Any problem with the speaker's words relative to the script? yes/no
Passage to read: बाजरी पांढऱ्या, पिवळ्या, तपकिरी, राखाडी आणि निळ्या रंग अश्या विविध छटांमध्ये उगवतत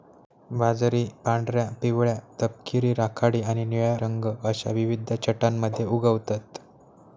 no